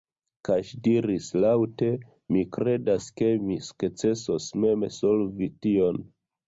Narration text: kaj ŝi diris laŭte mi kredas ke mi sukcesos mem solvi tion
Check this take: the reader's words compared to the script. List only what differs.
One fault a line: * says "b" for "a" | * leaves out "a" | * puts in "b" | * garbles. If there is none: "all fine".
all fine